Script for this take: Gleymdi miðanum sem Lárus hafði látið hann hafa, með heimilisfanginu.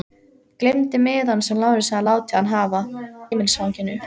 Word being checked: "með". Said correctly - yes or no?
no